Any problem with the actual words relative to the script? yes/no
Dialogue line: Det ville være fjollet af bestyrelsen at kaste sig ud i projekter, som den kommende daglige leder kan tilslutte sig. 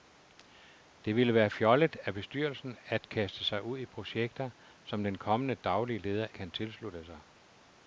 no